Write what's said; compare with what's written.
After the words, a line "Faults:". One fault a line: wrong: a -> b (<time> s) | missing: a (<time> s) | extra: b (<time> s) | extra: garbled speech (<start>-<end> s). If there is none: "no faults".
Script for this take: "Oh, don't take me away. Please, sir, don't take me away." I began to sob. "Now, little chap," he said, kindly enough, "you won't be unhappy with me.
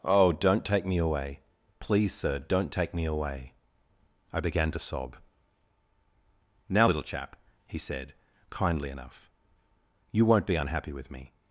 "Oh, don't take me away. Please, sir, don't take me away." I began to sob. "Now, little chap," he said, kindly enough, "you won't be unhappy with me.
Faults:
no faults